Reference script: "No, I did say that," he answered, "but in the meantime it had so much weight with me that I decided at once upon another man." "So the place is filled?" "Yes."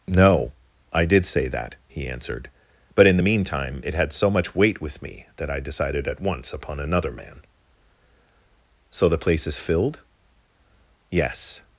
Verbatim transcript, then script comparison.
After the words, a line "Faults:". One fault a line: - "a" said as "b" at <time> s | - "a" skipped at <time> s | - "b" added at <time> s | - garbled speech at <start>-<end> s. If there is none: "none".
"No, I did say that," he answered, "but in the meantime it had so much weight with me that I decided at once upon another man." "So the place is filled?" "Yes."
Faults:
none